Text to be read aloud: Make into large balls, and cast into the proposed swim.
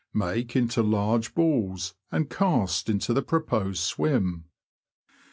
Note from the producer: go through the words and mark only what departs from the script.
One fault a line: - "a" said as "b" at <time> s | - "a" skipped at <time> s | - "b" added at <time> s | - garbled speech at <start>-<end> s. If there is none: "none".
none